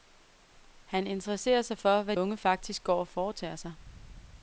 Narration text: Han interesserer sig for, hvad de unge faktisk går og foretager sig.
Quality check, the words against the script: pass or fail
fail